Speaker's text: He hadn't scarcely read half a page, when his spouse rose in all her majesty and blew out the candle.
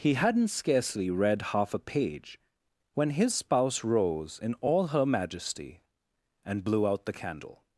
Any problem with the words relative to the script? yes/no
no